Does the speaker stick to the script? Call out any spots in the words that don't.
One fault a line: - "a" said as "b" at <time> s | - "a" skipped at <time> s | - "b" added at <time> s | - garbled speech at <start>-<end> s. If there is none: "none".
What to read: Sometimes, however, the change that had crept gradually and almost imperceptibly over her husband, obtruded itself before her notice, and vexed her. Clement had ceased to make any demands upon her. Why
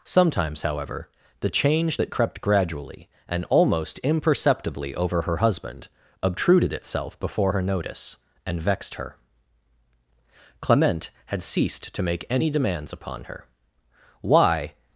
- "had" skipped at 2.1 s